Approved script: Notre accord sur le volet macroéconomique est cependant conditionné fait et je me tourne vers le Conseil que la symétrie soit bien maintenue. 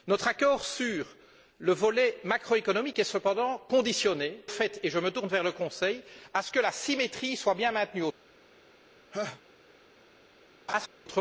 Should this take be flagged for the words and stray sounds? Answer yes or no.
yes